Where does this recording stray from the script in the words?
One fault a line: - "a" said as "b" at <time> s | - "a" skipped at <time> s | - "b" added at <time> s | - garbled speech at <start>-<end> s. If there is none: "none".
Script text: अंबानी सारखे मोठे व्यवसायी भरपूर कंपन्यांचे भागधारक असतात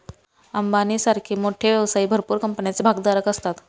none